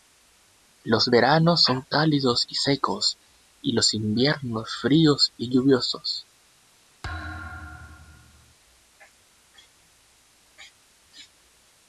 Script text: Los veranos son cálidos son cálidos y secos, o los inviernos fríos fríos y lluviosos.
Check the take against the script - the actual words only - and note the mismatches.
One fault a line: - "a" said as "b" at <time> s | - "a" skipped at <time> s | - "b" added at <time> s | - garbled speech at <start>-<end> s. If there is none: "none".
- "son cálidos" skipped at 2.5 s
- "o" said as "y" at 3.6 s
- "fríos" skipped at 5.3 s